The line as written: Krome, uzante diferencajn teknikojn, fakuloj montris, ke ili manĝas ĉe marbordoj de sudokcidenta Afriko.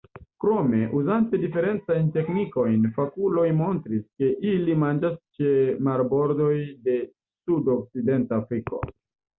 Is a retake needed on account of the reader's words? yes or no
no